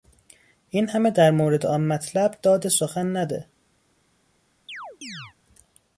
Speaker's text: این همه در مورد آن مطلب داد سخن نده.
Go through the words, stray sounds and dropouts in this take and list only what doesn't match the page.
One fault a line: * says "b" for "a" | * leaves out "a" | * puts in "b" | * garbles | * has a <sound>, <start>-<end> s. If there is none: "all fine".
* has a chirp, 4.7-5.3 s